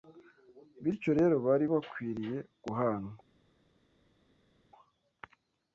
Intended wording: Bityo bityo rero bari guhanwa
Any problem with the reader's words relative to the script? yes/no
yes